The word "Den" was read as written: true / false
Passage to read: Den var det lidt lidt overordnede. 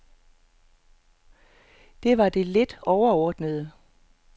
false